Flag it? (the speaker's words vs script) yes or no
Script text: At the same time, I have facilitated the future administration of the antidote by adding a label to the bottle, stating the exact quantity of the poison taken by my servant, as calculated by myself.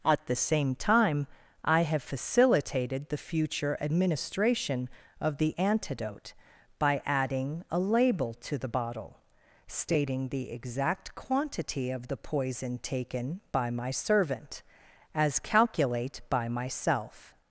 yes